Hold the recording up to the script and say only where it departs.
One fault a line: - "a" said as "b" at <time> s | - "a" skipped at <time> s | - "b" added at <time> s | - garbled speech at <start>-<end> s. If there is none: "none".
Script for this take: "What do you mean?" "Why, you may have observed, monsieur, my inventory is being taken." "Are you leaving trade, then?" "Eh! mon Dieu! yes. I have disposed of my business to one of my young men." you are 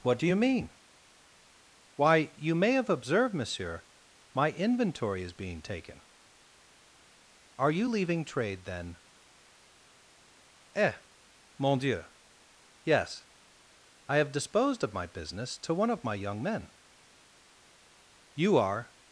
none